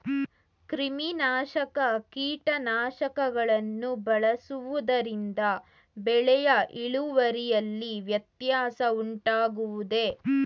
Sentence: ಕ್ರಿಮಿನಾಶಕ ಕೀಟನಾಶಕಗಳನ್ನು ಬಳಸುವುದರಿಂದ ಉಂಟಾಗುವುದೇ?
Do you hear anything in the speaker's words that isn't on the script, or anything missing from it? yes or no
yes